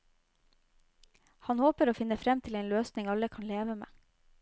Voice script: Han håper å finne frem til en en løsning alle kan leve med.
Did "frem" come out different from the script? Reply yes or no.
no